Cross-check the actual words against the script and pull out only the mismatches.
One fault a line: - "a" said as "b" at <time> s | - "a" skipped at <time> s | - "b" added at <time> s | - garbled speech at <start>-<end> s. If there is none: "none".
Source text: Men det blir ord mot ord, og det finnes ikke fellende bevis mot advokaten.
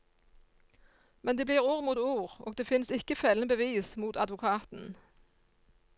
none